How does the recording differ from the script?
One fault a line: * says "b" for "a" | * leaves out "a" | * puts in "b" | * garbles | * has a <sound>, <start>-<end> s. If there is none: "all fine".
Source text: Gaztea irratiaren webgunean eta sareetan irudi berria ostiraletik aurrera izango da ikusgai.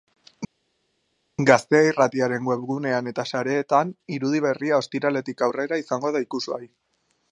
all fine